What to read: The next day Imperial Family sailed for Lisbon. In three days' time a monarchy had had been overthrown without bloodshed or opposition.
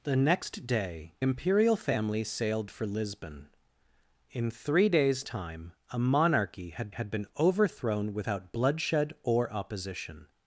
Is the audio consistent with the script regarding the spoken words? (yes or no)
yes